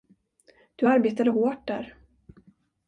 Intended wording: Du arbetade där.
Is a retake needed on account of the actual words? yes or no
yes